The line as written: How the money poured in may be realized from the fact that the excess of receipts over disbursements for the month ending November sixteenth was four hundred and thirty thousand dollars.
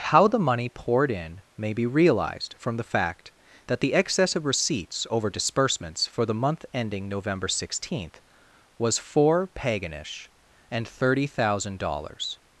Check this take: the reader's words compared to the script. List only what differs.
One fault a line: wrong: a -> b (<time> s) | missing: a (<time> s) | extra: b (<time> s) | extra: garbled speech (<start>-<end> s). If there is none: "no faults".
wrong: hundred -> paganish (9.5 s)